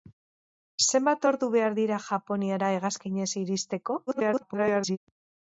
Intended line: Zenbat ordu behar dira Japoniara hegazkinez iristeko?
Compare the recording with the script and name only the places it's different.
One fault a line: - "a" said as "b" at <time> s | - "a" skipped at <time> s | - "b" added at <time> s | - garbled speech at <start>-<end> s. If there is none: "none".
- garbled speech at 4.1-5.0 s